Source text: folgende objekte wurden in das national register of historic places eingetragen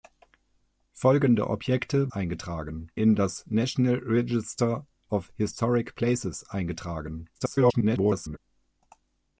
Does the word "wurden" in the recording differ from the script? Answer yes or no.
yes